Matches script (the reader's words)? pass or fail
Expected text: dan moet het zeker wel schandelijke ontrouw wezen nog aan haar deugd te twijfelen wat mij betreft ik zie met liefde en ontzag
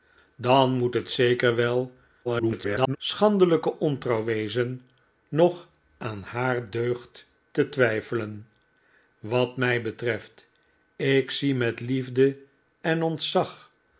fail